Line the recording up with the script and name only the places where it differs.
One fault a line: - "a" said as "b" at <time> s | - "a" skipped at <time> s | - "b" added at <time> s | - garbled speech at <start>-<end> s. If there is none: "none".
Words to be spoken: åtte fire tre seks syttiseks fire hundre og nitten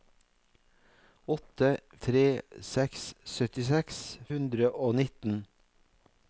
- "fire" skipped at 1.7 s
- "fire" skipped at 4.0 s